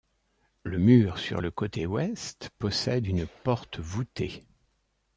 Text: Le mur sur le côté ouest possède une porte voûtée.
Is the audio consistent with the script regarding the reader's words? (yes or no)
yes